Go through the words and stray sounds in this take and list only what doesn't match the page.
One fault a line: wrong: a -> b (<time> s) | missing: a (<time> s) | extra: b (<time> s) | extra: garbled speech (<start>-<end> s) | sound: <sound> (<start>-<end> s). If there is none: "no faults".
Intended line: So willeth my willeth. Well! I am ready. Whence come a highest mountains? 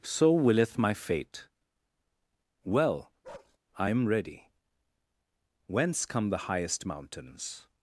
wrong: willeth -> fate (0.9 s)
sound: bark (3.2-3.6 s)
wrong: a -> the (6.3 s)